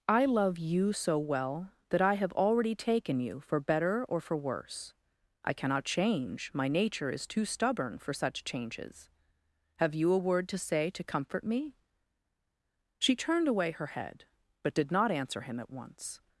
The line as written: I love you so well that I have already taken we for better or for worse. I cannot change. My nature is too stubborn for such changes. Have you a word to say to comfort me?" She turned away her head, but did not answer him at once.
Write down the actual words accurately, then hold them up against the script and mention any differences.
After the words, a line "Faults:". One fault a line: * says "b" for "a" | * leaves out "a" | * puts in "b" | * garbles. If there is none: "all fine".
I love you so well that I have already taken you for better or for worse. I cannot change. My nature is too stubborn for such changes. Have you a word to say to comfort me?" She turned away her head, but did not answer him at once.
Faults:
* says "you" for "we"